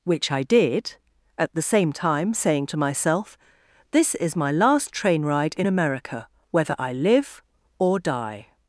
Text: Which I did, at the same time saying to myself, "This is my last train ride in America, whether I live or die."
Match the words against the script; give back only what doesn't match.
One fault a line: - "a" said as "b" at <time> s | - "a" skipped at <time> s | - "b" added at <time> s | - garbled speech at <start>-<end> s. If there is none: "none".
none